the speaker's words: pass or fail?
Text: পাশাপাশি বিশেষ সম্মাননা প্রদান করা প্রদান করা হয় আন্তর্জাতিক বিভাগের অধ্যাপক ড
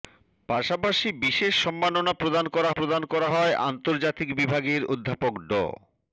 pass